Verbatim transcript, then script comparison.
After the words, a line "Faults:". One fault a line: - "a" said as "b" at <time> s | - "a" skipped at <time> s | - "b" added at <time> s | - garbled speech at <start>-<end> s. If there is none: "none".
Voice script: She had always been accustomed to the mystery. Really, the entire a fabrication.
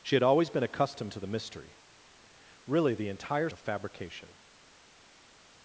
She had always been accustomed to the mystery. Really, the entire a fabrication.
Faults:
none